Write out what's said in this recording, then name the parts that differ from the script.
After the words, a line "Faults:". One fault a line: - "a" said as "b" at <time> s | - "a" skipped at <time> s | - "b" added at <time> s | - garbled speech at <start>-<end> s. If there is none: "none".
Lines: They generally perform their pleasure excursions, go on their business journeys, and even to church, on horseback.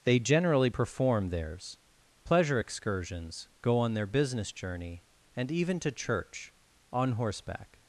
They generally perform theirs pleasure excursions, go on their business journey, and even to church, on horseback.
Faults:
- "their" said as "theirs" at 1.3 s
- "journeys" said as "journey" at 4.5 s